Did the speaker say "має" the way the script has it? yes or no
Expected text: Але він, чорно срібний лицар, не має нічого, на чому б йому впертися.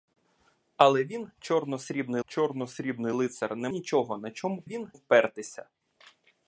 no